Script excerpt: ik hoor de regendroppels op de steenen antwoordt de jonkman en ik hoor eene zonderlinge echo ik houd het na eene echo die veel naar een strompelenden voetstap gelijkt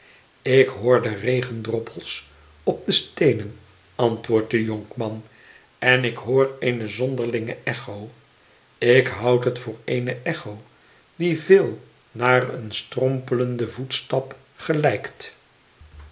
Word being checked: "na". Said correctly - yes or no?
no